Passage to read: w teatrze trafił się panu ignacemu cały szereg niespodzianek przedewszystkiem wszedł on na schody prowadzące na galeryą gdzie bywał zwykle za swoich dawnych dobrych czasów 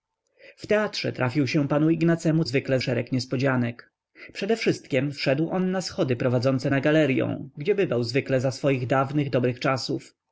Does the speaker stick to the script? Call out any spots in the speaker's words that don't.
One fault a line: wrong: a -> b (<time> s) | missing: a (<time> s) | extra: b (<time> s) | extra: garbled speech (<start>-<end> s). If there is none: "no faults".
wrong: cały -> zwykle (2.4 s)